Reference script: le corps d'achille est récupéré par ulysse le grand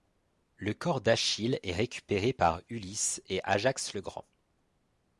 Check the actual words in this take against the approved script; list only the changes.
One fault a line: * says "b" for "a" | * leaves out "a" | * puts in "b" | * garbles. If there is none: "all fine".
* puts in "et ajax"